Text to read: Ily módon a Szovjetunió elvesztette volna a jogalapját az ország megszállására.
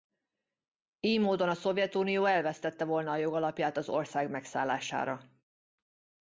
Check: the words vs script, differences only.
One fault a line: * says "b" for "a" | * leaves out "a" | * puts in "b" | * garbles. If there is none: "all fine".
all fine